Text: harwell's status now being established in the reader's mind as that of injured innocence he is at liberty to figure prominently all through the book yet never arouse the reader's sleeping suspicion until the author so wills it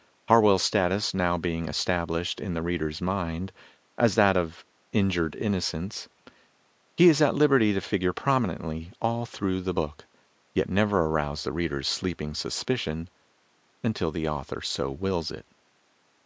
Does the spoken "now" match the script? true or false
true